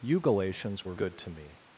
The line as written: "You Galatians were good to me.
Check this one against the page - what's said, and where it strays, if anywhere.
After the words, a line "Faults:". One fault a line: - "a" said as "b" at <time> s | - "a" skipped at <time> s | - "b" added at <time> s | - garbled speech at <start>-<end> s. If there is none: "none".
"You Galatians were good to me.
Faults:
none